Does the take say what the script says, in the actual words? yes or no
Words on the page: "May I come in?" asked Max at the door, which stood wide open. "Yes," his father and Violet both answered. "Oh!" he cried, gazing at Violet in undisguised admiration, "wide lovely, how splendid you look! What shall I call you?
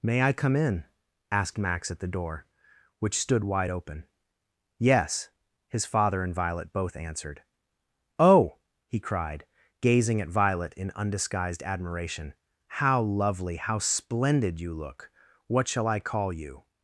no